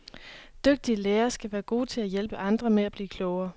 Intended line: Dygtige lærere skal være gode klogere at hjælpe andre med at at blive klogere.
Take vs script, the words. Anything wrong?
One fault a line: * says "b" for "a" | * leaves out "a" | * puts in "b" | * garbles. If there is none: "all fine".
* says "til" for "klogere"
* leaves out "at"